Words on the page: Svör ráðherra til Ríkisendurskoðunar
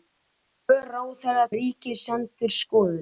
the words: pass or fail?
fail